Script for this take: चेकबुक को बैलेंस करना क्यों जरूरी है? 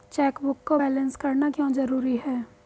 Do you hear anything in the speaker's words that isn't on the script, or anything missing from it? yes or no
no